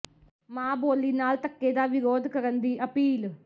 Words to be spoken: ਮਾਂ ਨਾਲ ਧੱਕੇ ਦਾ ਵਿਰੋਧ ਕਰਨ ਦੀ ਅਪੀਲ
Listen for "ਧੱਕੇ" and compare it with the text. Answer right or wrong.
right